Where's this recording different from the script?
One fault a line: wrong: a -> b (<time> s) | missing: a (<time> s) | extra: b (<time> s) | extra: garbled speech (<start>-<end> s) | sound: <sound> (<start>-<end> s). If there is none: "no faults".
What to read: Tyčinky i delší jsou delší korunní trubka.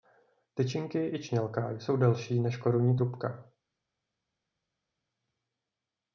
wrong: delší -> čnělka (1.2 s)
extra: než (2.4 s)